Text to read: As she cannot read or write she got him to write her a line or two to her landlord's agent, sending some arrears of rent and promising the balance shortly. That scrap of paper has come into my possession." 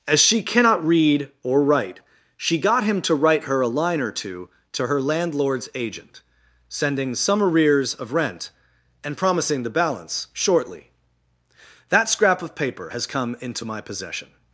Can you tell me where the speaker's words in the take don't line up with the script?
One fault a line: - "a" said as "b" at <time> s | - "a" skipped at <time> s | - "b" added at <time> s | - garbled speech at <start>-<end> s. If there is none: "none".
none